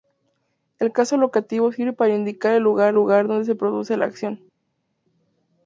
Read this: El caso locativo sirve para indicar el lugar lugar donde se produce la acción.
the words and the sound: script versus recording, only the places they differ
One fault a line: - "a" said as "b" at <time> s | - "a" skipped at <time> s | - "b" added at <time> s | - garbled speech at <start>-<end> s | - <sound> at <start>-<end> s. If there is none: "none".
none